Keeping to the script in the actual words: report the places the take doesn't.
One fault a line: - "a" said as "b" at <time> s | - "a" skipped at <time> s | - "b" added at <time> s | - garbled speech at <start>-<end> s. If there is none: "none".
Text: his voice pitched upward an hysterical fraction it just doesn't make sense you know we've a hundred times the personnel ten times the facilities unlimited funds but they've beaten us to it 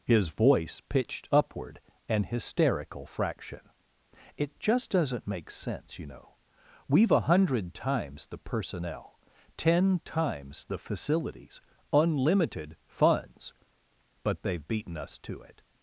none